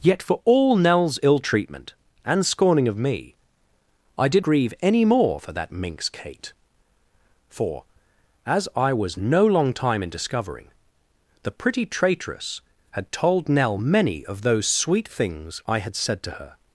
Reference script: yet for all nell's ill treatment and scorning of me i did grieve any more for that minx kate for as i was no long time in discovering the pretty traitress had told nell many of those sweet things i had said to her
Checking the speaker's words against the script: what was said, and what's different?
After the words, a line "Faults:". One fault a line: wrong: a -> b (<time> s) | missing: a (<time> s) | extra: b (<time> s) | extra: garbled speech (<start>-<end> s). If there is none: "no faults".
yet for all nell's ill treatment and scorning of me i did grieve any more for that minx kate for as i was no long time in discovering the pretty traitress had told nell many of those sweet things i had said to her
Faults:
no faults